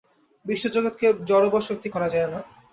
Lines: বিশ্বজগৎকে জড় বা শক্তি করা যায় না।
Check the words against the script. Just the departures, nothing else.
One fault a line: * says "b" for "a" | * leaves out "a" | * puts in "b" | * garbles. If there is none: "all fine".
all fine